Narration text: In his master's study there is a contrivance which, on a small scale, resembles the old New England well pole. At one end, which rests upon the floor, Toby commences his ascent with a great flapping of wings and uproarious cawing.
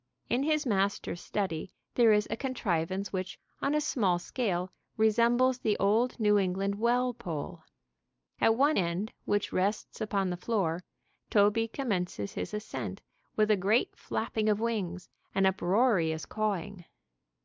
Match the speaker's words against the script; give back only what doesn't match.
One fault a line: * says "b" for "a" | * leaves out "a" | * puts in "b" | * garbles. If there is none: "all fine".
all fine